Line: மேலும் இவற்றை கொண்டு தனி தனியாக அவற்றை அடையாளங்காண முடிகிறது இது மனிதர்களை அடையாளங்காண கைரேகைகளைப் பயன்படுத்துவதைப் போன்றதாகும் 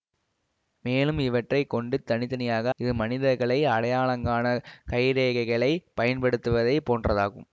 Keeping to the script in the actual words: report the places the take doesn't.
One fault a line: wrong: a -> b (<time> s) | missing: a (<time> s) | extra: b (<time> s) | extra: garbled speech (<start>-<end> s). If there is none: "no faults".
missing: அவற்றை அடையாளங்காண முடிகிறது (2.7 s)